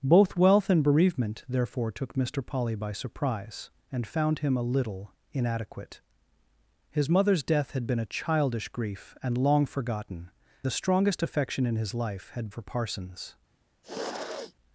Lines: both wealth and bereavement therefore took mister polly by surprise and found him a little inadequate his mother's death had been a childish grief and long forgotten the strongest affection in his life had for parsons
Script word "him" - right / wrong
right